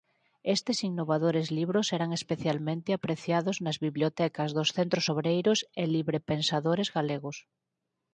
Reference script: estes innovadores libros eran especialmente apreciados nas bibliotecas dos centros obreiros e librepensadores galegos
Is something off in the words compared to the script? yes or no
no